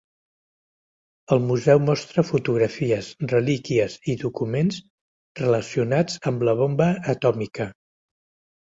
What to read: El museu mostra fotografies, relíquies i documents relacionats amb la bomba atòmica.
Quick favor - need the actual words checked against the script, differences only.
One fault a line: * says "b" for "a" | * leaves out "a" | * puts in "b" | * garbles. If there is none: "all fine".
all fine